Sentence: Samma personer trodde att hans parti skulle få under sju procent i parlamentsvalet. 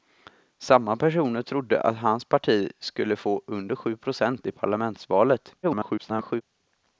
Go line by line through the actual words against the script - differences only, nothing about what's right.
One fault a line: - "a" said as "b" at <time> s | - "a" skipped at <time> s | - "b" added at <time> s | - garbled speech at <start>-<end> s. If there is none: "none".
- garbled speech at 5.6-6.4 s